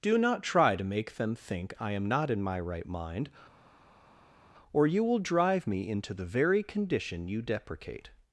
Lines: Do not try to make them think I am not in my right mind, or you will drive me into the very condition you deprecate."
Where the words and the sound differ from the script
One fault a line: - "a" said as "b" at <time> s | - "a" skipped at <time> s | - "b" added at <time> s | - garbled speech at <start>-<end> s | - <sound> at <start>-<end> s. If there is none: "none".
none